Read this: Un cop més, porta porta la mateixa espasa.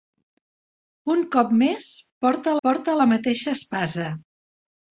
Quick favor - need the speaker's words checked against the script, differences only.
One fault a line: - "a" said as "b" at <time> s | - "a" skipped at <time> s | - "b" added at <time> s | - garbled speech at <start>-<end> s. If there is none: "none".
none